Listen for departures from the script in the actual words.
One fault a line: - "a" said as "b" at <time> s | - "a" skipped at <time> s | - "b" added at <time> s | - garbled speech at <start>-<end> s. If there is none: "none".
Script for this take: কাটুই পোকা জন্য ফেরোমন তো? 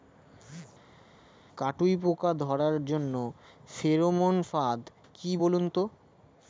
- "ধরার" added at 2.4 s
- "ফাদ কি বলুন" added at 4.5 s